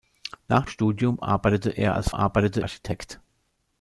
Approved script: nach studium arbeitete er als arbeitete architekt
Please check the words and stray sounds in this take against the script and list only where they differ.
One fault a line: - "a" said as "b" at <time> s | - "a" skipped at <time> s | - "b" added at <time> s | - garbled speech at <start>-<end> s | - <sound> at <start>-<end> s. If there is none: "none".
none